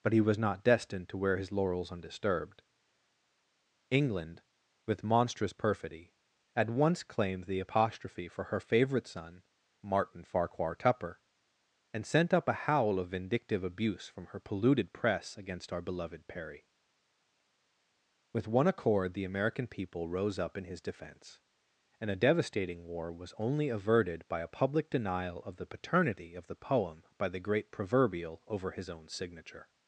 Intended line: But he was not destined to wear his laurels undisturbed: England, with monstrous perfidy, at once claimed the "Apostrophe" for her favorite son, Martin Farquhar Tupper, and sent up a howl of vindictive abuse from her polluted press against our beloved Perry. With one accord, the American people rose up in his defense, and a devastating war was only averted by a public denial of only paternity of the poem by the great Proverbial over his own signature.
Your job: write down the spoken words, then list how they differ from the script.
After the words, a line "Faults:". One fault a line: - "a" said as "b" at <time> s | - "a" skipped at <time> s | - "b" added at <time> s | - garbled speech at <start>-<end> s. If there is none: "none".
But he was not destined to wear his laurels undisturbed: England, with monstrous perfidy, at once claimed the "Apostrophe" for her favorite son, Martin Farquhar Tupper, and sent up a howl of vindictive abuse from her polluted press against our beloved Perry. With one accord, the American people rose up in his defense, and a devastating war was only averted by a public denial of the paternity of the poem by the great Proverbial over his own signature.
Faults:
- "only" said as "the" at 25.6 s